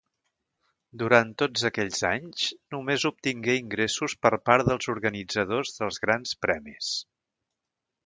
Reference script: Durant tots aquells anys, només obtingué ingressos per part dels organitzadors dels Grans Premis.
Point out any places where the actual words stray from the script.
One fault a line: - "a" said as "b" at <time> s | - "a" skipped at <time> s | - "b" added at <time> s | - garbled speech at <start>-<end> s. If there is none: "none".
none